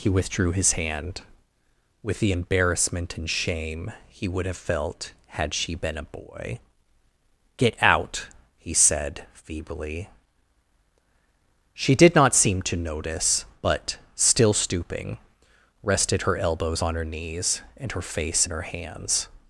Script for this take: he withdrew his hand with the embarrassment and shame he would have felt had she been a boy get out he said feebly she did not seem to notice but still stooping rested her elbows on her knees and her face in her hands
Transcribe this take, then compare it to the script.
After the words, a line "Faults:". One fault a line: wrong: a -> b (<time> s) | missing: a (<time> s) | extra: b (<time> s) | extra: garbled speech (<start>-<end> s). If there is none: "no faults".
he withdrew his hand with the embarrassment and shame he would have felt had she been a boy get out he said feebly she did not seem to notice but still stooping rested her elbows on her knees and her face in her hands
Faults:
no faults